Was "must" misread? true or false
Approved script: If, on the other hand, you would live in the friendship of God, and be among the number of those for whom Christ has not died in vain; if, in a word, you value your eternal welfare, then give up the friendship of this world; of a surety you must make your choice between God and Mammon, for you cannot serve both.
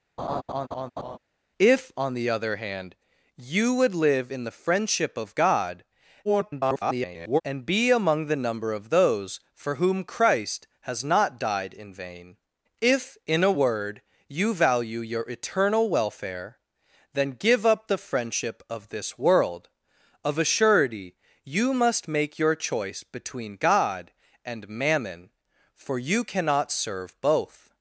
false